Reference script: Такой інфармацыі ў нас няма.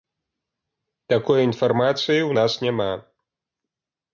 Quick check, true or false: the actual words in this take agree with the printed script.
true